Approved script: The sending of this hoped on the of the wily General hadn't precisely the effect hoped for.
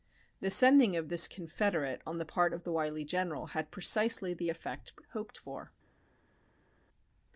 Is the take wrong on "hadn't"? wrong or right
wrong